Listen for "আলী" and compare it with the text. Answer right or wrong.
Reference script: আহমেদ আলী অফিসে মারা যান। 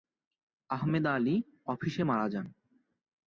right